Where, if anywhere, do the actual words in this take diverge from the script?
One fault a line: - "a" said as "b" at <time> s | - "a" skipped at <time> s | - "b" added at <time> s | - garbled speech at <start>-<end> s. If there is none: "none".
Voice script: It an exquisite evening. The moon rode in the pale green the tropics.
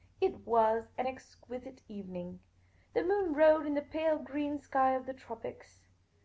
- "was" added at 0.5 s
- "sky of" added at 4.6 s